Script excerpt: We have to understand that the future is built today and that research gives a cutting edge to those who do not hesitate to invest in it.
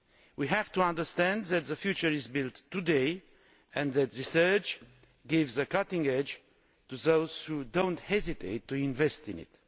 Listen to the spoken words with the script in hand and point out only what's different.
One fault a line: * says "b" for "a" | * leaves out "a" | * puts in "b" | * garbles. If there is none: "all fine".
all fine